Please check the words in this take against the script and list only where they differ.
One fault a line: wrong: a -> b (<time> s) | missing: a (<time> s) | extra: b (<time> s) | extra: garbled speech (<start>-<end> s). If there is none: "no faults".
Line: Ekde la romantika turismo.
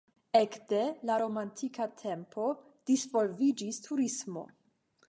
extra: tempo disvolviĝis (2.0 s)